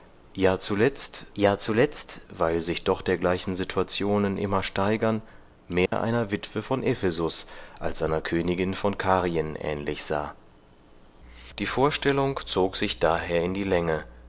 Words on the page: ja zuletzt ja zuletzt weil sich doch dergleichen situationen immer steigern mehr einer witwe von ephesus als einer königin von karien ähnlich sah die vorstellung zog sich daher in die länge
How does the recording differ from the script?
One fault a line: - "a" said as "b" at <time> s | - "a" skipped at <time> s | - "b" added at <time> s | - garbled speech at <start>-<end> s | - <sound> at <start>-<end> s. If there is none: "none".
- dropout at 5.9-5.9 s